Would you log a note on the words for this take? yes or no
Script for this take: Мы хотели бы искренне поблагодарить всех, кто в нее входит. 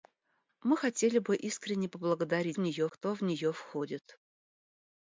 yes